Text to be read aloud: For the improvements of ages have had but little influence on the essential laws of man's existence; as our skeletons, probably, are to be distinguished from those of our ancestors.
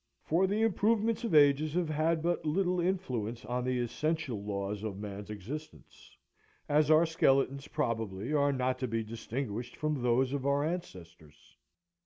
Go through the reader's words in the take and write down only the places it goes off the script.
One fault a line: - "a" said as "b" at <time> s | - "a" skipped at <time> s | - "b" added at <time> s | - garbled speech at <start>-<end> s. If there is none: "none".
- "not" added at 8.5 s